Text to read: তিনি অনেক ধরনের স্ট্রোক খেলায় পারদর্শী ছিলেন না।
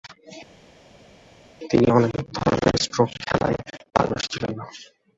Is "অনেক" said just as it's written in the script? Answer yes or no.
yes